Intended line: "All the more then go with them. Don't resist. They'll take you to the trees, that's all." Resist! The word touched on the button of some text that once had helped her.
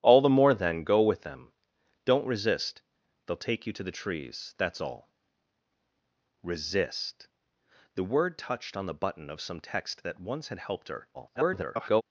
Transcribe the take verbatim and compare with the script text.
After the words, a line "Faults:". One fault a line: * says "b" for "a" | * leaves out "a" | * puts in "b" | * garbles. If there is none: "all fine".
"All the more then go with them. Don't resist. They'll take you to the trees, that's all." Resist! The word touched on the button of some text that once had helped her. [garbled]
Faults:
* garbles